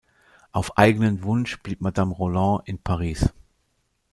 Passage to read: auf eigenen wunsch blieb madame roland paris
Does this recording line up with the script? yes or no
no